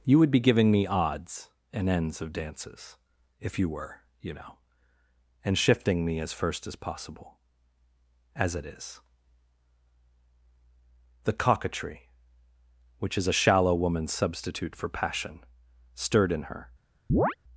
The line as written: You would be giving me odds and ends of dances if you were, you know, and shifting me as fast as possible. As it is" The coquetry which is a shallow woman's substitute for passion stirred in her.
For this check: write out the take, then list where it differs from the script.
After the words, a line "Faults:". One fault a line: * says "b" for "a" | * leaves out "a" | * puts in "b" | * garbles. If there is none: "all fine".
You would be giving me odds and ends of dances if you were, you know, and shifting me as first as possible. As it is" The coquetry which is a shallow woman's substitute for passion stirred in her.
Faults:
* says "first" for "fast"